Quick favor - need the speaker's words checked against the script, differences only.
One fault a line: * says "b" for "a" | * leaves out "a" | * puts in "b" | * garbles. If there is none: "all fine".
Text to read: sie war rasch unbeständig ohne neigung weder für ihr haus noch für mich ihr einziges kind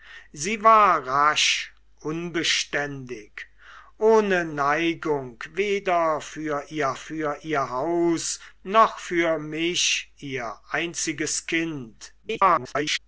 * puts in "für ihr"
* garbles